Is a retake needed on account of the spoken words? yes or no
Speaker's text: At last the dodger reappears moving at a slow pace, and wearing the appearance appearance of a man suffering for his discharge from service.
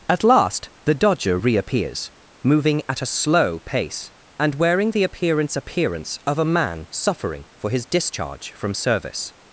no